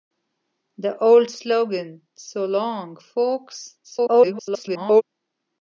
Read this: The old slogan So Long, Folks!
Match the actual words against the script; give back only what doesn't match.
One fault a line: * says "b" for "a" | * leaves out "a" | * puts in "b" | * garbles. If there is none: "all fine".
* garbles